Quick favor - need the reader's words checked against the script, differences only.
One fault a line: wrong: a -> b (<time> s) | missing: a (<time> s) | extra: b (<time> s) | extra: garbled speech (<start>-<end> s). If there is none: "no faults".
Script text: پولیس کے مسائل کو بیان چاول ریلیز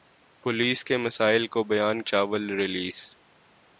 no faults